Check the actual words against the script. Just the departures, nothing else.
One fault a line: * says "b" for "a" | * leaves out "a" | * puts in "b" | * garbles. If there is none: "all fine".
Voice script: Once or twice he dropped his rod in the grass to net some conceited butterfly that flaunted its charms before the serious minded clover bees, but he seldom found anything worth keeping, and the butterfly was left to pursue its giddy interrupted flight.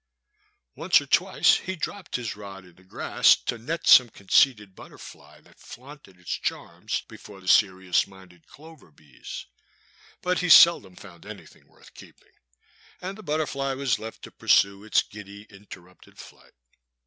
all fine